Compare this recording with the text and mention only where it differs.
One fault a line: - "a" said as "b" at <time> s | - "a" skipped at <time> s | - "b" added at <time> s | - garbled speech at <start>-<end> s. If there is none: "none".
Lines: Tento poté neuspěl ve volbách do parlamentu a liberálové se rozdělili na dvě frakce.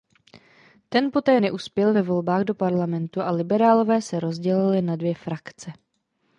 - "Tento" said as "Ten" at 0.9 s